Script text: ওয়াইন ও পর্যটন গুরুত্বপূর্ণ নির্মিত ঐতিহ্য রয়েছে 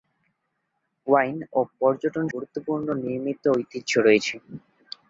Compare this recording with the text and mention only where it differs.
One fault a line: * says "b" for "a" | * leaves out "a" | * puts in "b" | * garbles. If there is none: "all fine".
all fine